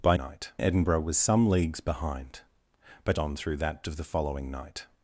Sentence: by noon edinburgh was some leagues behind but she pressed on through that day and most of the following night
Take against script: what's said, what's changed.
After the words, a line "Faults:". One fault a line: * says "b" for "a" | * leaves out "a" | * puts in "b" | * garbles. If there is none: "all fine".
by night edinburgh was some leagues behind but on through that of the following night
Faults:
* says "night" for "noon"
* leaves out "she pressed"
* leaves out "day and most"